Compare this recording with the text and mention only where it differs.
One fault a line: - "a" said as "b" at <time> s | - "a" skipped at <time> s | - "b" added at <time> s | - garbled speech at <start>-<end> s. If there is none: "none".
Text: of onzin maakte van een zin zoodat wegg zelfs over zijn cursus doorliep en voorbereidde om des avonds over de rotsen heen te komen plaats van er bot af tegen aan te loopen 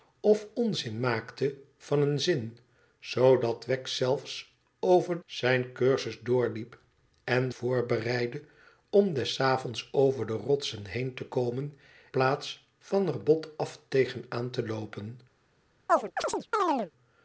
none